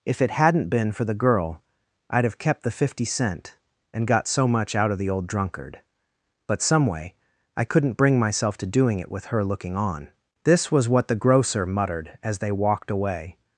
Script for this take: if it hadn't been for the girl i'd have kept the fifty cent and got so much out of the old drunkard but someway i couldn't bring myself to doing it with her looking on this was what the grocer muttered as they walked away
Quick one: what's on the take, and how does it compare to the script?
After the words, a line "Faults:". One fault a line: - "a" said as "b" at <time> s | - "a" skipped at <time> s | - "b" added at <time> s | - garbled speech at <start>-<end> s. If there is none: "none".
if it hadn't been for the girl i'd have kept the fifty cent and got so much out of the old drunkard but someway i couldn't bring myself to doing it with her looking on this was what the grocer muttered as they walked away
Faults:
none